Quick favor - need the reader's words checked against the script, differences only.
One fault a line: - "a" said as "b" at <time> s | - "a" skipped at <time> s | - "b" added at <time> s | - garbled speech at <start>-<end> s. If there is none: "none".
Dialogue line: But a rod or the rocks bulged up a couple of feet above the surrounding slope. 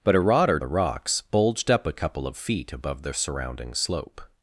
none